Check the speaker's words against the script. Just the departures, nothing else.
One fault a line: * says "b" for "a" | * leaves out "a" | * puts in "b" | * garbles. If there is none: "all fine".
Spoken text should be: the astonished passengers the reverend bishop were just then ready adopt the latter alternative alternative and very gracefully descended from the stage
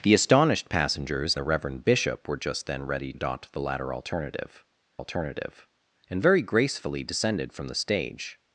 all fine